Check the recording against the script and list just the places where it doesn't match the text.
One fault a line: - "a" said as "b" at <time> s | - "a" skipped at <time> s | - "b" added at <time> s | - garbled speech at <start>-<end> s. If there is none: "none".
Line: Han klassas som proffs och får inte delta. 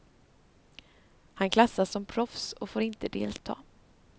none